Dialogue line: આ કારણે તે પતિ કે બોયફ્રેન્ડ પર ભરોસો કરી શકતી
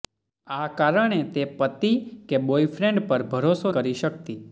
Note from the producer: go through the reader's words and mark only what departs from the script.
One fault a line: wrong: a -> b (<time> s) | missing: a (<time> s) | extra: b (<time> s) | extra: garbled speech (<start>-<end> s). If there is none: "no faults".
no faults